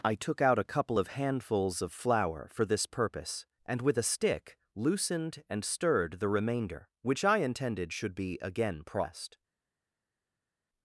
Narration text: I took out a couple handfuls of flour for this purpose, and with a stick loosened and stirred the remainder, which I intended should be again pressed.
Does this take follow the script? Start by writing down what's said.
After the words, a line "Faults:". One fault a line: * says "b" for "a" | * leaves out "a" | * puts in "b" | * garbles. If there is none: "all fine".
I took out a couple of handfuls of flour for this purpose, and with a stick loosened and stirred the remainder, which I intended should be again pressed.
Faults:
* puts in "of"